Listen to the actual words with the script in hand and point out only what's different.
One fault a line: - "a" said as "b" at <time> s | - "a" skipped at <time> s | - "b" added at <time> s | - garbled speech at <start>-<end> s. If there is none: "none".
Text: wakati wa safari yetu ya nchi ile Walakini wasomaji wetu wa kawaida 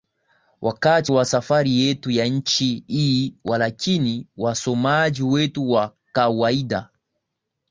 - "ile" said as "hii" at 2.9 s